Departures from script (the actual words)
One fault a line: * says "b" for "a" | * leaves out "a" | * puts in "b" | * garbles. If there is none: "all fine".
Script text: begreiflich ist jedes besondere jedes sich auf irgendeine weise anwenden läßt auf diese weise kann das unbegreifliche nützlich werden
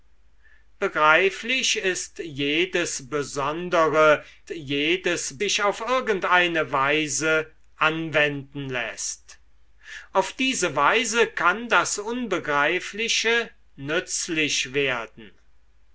all fine